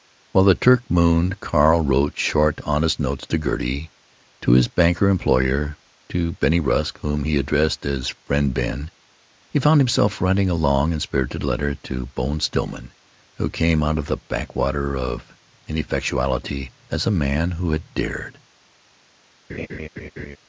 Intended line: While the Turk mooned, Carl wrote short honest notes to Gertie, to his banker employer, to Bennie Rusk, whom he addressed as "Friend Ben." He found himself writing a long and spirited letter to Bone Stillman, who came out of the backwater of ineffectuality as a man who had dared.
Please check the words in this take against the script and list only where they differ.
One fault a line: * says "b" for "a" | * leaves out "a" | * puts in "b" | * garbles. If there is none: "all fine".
all fine